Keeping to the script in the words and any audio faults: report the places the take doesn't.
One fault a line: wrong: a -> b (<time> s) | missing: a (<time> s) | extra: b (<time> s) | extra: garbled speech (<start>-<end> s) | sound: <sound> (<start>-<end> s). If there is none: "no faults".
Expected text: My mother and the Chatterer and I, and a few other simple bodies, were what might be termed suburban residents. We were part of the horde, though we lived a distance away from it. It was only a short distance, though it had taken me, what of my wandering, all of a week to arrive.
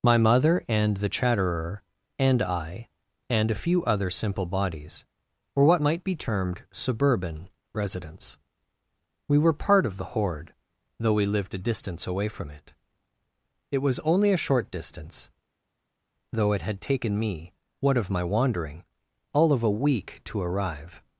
no faults